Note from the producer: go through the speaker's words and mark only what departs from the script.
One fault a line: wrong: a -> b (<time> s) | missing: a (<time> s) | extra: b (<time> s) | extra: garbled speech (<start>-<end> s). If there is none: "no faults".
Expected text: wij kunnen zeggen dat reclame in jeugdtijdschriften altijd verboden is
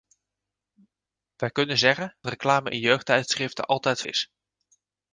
missing: dat (2.1 s)
missing: verboden (4.0 s)